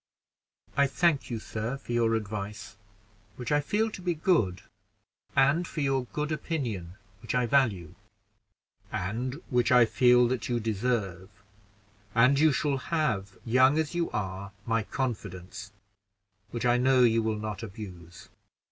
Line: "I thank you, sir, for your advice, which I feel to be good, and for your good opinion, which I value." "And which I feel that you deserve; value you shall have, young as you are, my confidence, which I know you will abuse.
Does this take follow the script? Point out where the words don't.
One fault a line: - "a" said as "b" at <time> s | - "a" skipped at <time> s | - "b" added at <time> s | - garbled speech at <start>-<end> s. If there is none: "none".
- "value" said as "and" at 12.2 s
- "not" added at 17.4 s